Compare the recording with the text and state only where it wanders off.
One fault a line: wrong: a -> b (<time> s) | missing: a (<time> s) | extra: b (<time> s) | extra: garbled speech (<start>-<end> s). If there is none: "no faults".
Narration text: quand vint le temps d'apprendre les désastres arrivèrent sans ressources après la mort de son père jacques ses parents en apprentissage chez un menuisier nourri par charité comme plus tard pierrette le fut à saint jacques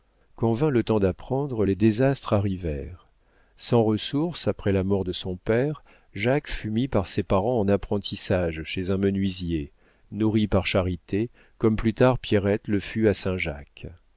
extra: fut mis par (6.5 s)